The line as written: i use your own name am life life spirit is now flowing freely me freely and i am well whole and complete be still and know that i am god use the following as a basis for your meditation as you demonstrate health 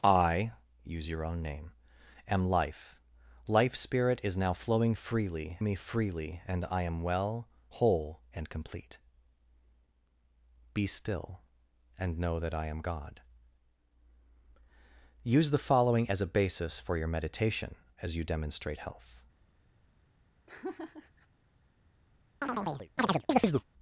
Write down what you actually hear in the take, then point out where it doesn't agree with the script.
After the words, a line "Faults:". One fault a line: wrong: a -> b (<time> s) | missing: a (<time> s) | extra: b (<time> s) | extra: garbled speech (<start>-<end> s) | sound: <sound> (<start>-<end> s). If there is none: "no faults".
i use your own name am life life spirit is now flowing freely me freely and i am well whole and complete be still and know that i am god use the following as a basis for your meditation as you demonstrate health
Faults:
sound: laugh (20.5-21.3 s)
sound: chirp (22.4-23.6 s)